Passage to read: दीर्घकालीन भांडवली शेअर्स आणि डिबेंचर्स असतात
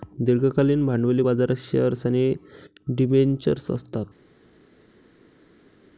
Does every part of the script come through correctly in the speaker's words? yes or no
no